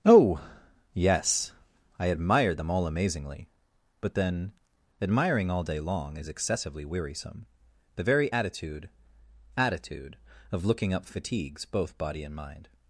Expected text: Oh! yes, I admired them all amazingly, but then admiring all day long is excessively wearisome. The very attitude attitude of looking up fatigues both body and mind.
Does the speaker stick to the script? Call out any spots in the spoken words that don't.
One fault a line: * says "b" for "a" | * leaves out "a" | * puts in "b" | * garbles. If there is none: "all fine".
all fine